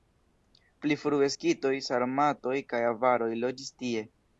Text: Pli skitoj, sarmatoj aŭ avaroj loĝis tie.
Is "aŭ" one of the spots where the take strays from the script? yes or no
yes